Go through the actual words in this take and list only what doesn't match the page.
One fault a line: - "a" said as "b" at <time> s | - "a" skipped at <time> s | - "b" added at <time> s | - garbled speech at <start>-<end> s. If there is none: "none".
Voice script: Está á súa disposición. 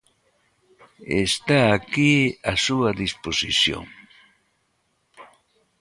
- "aquí" added at 1.8 s